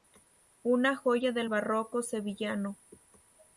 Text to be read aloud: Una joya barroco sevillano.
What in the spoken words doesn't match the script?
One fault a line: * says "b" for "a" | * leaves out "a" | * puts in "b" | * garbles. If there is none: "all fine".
* puts in "del"